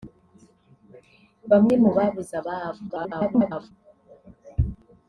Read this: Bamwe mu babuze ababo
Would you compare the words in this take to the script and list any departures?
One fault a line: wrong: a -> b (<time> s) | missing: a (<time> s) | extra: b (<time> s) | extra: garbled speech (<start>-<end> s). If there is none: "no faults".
extra: garbled speech (2.9-3.7 s)